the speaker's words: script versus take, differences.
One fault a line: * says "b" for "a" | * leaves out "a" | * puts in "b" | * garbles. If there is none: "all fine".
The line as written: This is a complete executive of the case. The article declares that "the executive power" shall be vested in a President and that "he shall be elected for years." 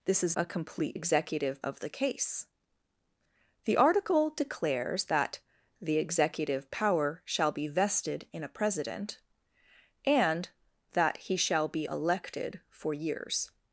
all fine